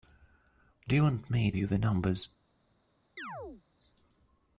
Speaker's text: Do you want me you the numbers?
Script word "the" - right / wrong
right